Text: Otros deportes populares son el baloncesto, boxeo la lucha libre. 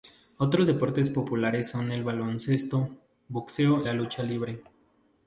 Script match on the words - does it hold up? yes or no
yes